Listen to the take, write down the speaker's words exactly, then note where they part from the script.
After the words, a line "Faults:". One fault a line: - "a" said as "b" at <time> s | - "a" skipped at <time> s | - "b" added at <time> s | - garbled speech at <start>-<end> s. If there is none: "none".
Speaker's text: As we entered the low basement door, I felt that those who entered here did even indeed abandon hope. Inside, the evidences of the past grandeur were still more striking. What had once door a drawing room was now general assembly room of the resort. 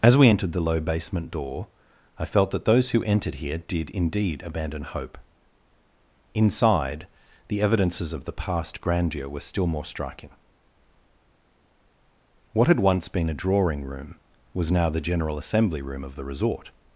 As we entered the low basement door, I felt that those who entered here did indeed abandon hope. Inside, the evidences of the past grandeur were still more striking. What had once been a drawing room was now the general assembly room of the resort.
Faults:
- "even" skipped at 3.9 s
- "door" said as "been" at 13.1 s
- "the" added at 14.9 s